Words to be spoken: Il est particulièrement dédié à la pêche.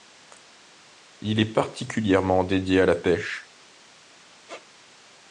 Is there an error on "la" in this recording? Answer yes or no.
no